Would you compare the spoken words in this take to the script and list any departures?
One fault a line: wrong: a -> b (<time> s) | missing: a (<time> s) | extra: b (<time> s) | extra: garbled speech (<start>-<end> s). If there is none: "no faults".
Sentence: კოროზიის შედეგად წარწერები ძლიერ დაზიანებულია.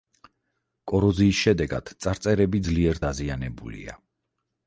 no faults